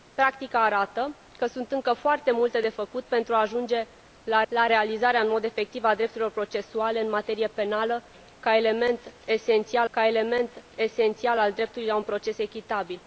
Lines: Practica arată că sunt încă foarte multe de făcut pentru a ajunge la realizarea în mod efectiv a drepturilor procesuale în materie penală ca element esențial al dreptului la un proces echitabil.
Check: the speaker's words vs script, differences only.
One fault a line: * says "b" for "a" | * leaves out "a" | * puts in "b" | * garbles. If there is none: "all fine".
* puts in "la"
* puts in "ca element esențial"